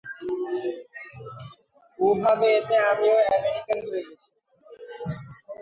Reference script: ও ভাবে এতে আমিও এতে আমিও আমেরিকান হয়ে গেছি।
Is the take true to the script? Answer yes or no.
no